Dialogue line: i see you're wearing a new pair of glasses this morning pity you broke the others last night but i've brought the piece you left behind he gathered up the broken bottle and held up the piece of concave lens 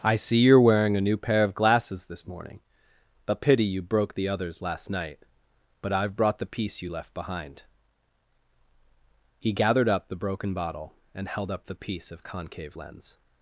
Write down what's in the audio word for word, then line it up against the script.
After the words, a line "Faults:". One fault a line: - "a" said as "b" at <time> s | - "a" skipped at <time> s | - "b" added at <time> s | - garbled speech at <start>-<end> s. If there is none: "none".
i see you're wearing a new pair of glasses this morning a pity you broke the others last night but i've brought the piece you left behind he gathered up the broken bottle and held up the piece of concave lens
Faults:
- "a" added at 3.3 s